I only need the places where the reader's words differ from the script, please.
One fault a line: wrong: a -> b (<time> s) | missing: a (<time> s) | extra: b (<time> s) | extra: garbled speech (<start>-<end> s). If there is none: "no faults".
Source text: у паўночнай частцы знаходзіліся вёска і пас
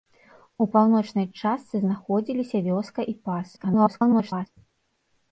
extra: garbled speech (3.6-4.5 s)